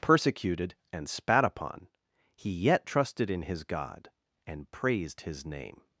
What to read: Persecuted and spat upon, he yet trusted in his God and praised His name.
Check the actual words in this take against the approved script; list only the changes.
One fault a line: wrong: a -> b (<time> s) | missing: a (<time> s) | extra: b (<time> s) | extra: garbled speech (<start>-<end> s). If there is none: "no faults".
no faults